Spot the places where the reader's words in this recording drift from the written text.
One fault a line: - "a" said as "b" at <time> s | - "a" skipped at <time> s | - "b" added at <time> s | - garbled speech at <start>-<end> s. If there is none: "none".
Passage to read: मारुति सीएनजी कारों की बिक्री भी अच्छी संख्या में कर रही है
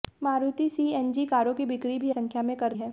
- "अच्छी" skipped at 2.1 s
- "रही" skipped at 2.7 s